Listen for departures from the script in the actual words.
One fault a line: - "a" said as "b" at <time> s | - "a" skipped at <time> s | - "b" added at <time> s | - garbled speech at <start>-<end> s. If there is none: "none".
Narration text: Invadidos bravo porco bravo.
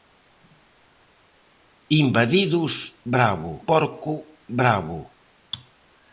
none